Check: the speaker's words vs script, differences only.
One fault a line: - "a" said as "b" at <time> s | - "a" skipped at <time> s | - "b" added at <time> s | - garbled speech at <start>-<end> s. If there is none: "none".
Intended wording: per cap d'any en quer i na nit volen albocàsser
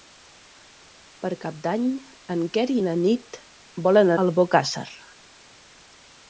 none